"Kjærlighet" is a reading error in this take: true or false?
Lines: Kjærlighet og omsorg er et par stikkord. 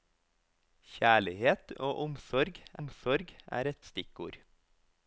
false